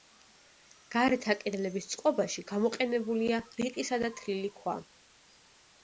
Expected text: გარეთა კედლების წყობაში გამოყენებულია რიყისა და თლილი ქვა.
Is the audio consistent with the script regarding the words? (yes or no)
yes